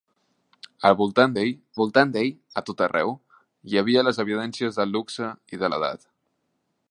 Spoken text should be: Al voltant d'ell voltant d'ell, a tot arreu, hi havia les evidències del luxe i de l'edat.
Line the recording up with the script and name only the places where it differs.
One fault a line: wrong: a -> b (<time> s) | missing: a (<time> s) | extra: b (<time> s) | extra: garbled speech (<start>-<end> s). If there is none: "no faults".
no faults